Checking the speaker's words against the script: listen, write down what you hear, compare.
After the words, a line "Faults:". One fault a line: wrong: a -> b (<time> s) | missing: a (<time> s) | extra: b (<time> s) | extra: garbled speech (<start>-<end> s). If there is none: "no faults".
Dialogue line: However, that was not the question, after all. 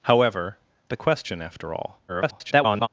However, the question, after all. [garbled]
Faults:
missing: that was not (0.6 s)
extra: garbled speech (2.1-2.9 s)